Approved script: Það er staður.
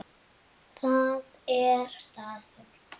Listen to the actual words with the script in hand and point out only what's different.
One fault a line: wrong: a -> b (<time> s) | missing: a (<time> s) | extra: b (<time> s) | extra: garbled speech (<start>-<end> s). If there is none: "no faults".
no faults